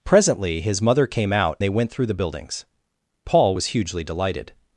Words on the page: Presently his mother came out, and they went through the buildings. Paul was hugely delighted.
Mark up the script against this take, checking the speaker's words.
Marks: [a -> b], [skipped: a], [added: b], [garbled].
Presently his mother came out, [skipped: and] they went through the buildings. Paul was hugely delighted.